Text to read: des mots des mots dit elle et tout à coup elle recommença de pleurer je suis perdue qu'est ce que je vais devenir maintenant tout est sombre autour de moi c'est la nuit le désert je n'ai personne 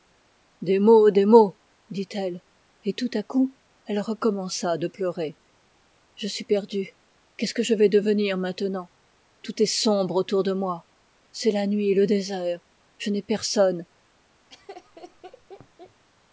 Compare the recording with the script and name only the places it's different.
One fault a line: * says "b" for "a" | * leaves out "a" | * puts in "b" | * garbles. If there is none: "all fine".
all fine